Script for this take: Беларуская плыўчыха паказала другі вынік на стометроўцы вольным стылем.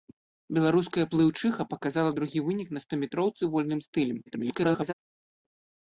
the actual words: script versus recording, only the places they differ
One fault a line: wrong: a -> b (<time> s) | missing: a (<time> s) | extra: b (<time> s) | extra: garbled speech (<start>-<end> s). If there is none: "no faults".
extra: garbled speech (4.3-4.9 s)